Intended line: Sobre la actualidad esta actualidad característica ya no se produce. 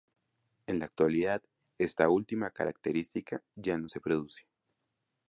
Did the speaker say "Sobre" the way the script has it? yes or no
no